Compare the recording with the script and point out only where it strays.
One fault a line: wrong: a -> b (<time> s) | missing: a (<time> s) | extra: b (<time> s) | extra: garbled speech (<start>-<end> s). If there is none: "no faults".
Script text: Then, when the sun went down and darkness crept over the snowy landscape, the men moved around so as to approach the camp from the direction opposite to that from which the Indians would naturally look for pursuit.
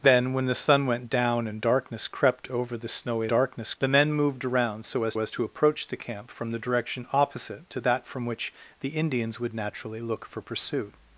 wrong: landscape -> darkness (3.3 s)
extra: as (5.2 s)